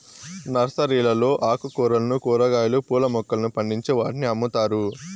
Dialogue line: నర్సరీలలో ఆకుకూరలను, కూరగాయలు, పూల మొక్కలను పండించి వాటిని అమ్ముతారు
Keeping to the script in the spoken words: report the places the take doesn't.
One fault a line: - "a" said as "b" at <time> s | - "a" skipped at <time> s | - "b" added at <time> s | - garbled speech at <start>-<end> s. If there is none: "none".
none